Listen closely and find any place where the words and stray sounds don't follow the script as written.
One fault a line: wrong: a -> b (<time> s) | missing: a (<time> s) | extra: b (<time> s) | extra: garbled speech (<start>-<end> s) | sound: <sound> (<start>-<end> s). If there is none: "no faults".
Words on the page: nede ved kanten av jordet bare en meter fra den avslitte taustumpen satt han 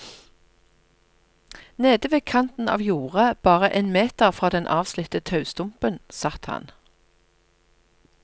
no faults